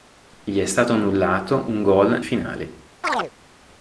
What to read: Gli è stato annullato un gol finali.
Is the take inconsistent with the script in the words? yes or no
no